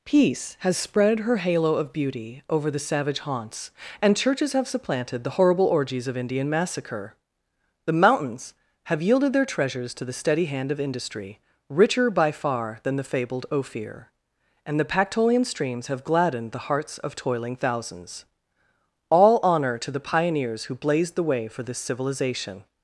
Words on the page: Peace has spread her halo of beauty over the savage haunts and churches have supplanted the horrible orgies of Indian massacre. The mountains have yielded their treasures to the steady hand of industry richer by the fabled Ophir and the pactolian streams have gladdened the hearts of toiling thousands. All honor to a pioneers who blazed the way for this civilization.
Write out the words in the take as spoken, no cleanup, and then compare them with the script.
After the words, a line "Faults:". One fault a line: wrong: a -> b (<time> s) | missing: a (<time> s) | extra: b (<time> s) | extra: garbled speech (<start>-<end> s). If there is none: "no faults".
Peace has spread her halo of beauty over the savage haunts and churches have supplanted the horrible orgies of Indian massacre. The mountains have yielded their treasures to the steady hand of industry richer by far than the fabled Ophir and the pactolian streams have gladdened the hearts of toiling thousands. All honor to the pioneers who blazed the way for this civilization.
Faults:
extra: far than (12.3 s)
wrong: a -> the (19.9 s)